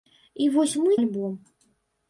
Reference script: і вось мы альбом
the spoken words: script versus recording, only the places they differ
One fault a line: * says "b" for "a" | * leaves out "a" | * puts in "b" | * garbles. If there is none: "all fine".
all fine